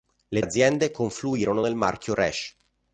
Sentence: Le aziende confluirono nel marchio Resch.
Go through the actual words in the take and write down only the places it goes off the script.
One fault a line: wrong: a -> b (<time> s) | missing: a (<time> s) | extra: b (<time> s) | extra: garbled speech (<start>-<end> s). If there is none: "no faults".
no faults